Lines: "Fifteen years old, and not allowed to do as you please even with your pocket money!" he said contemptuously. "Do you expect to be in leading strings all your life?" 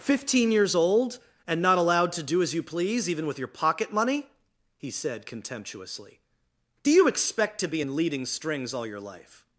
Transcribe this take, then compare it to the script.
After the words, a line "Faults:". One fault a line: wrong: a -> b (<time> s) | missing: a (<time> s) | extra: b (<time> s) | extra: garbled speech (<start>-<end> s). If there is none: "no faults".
"Fifteen years old, and not allowed to do as you please even with your pocket money!" he said contemptuously. "Do you expect to be in leading strings all your life?"
Faults:
no faults